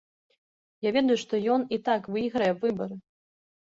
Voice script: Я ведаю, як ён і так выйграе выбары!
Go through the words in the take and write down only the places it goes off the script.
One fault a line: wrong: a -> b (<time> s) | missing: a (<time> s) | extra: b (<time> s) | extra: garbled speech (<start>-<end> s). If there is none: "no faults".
wrong: як -> што (1.2 s)